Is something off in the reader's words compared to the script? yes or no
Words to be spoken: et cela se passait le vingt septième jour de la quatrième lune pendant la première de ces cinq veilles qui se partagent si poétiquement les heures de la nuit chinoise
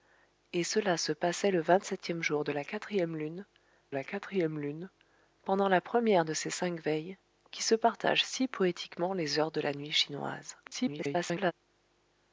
yes